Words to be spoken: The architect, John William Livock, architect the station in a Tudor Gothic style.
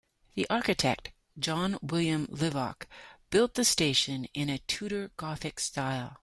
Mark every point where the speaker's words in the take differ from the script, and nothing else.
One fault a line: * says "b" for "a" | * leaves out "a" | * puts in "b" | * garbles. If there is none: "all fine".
* says "built" for "architect"